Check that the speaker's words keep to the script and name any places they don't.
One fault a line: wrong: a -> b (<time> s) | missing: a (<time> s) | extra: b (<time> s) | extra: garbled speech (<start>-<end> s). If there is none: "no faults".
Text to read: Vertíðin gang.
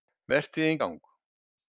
no faults